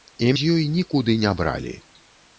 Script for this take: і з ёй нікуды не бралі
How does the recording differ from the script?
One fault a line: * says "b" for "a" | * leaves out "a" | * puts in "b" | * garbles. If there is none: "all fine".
all fine